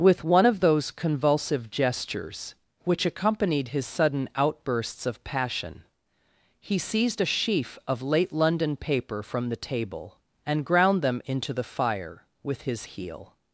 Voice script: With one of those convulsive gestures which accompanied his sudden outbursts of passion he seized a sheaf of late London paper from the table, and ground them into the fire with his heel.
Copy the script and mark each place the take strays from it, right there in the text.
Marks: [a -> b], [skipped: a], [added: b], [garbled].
With one of those convulsive gestures which accompanied his sudden outbursts of passion he seized a sheaf of late London paper from the table, and ground them into the fire with his heel.